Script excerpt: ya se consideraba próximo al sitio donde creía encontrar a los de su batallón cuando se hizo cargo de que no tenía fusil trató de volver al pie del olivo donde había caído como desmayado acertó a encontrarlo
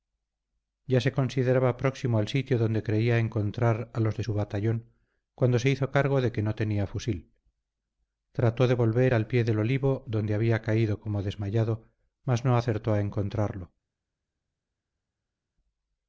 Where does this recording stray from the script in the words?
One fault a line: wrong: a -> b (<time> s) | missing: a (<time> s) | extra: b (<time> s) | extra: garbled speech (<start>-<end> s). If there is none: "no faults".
extra: mas no (12.2 s)